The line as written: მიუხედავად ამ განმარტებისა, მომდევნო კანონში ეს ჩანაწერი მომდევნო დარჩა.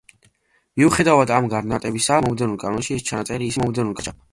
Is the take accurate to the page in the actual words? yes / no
yes